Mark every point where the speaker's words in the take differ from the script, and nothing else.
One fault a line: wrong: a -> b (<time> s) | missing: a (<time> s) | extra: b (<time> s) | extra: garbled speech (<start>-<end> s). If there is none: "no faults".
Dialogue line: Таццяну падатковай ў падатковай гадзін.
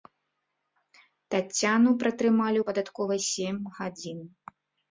wrong: падатковай -> пратрымалі (2.0 s)
extra: сем (3.3 s)